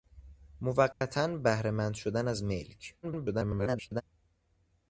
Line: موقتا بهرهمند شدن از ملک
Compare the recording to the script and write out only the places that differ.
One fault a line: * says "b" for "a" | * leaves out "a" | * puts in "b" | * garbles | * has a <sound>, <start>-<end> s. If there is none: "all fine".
* has a dropout, 0.9-1.0 s
* garbles